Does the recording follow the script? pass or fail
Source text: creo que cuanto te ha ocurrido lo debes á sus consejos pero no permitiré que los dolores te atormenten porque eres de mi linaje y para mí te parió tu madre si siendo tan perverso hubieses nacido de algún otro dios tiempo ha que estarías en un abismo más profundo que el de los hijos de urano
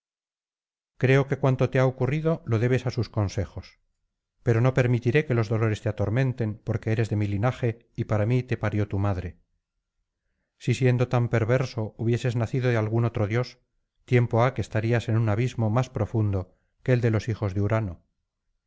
pass